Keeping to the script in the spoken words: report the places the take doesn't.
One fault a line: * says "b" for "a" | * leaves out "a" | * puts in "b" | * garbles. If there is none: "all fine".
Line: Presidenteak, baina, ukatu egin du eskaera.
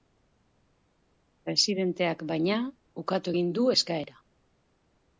all fine